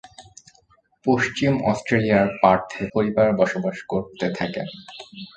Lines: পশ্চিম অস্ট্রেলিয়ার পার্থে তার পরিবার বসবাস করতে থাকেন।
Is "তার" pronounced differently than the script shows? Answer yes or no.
yes